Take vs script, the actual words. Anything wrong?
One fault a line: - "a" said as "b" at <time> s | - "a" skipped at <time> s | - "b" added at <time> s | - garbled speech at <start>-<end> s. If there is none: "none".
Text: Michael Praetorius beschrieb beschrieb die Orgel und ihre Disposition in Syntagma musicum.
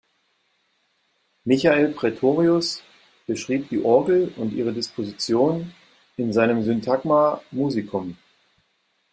- "beschrieb" skipped at 3.7 s
- "seinem" added at 6.3 s